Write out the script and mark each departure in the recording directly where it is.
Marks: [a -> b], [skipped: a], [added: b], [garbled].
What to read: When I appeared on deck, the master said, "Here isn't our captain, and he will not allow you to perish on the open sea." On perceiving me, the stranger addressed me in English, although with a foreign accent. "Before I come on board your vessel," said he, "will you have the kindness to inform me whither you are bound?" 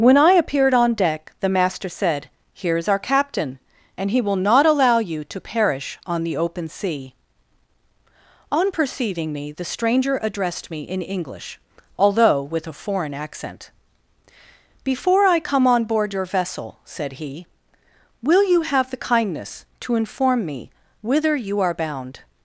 When I appeared on deck, the master said, "Here [isn't -> is] our captain, and he will not allow you to perish on the open sea." On perceiving me, the stranger addressed me in English, although with a foreign accent. "Before I come on board your vessel," said he, "will you have the kindness to inform me whither you are bound?"